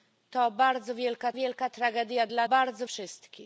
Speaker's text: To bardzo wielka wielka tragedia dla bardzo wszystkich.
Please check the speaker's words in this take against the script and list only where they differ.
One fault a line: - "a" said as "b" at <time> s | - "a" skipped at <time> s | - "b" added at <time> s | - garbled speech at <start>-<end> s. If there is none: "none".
none